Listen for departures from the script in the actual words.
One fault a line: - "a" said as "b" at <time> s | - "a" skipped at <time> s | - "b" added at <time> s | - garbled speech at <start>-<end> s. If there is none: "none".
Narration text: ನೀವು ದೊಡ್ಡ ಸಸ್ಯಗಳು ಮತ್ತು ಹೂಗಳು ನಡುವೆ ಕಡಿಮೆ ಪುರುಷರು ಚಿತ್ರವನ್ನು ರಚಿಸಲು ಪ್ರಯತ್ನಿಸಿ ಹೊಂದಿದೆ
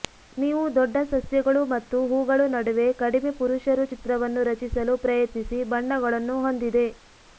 - "ಬಣ್ಣಗಳನ್ನು" added at 5.7 s